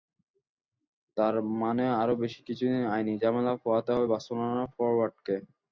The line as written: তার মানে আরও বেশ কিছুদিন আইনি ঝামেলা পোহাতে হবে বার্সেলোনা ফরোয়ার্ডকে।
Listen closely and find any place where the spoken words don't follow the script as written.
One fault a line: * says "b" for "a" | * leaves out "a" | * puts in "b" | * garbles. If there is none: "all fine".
all fine